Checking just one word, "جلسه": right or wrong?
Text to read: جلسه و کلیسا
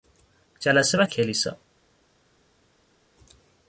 right